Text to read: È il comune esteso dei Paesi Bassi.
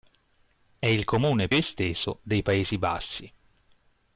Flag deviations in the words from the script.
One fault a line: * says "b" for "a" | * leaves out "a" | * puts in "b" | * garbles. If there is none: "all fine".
all fine